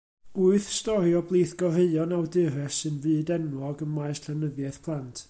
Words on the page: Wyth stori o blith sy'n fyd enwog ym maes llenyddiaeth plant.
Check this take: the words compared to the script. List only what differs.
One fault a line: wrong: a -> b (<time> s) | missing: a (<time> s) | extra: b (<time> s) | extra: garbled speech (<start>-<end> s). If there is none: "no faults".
extra: goreuon awdures (1.6 s)